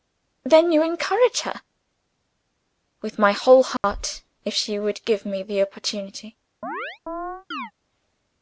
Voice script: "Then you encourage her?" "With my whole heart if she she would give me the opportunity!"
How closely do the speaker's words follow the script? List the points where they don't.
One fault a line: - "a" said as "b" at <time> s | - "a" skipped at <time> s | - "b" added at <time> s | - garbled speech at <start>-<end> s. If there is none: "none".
- "she" skipped at 4.8 s